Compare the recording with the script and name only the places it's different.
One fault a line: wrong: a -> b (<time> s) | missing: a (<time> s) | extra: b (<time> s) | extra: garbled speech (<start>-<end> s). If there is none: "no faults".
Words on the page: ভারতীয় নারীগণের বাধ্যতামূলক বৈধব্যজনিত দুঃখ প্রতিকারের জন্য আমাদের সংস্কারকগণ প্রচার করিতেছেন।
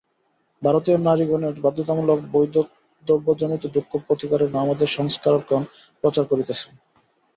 missing: জন্য (4.5 s)